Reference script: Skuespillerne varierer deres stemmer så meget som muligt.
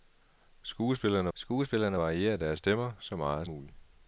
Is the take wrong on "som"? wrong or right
wrong